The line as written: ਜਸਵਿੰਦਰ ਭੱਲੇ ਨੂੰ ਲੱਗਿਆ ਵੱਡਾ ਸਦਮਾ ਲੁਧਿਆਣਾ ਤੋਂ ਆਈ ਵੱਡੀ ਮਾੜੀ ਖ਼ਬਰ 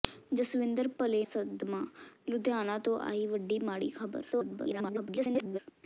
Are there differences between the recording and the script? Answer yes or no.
yes